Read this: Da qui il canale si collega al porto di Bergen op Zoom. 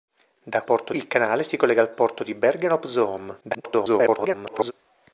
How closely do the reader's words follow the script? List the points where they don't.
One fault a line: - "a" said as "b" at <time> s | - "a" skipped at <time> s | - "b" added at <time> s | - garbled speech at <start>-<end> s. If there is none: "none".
- "qui" said as "porto" at 0.6 s
- garbled speech at 3.4-4.7 s